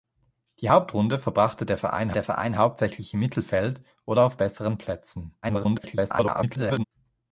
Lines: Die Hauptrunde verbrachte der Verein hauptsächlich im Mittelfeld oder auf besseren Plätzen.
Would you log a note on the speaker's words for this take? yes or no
yes